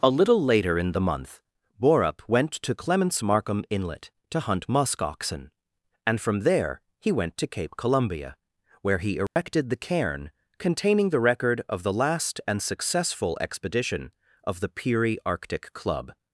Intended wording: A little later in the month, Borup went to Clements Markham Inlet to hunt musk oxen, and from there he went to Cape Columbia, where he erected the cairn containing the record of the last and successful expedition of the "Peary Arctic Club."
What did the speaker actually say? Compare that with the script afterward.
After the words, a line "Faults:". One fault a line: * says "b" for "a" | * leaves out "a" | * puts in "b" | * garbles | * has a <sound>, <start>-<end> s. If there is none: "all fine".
A little later in the month, Borup went to Clements Markham Inlet to hunt musk oxen, and from there he went to Cape Columbia, where he erected the cairn containing the record of the last and successful expedition of the "Peary Arctic Club."
Faults:
* has a dropout, 9.3-9.4 s